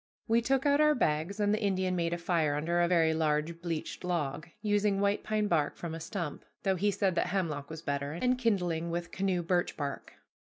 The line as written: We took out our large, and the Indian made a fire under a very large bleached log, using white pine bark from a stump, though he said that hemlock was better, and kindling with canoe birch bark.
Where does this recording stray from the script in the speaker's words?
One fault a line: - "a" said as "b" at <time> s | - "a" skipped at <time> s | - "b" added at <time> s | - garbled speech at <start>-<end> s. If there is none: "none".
- "large" said as "bags" at 0.9 s